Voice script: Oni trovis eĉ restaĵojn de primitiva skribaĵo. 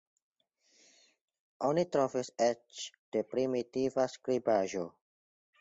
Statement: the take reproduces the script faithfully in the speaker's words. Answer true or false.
false